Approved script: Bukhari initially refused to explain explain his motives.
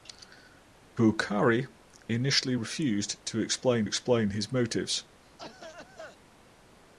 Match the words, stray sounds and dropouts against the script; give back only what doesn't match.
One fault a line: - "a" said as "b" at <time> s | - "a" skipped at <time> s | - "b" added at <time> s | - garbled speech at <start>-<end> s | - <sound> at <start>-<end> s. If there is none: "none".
- cough at 5.2-6.2 s